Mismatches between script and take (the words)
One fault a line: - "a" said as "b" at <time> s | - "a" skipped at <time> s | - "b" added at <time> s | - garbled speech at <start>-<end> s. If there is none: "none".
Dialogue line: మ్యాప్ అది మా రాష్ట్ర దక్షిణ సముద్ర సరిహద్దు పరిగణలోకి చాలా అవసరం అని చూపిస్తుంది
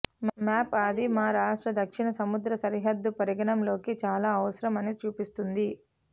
none